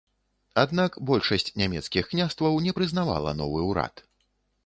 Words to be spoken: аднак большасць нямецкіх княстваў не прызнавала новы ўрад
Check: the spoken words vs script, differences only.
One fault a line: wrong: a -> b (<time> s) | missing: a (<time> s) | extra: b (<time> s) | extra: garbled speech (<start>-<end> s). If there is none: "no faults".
no faults